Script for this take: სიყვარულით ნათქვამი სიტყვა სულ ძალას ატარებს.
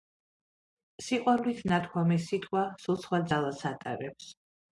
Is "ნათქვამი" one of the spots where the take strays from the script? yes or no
no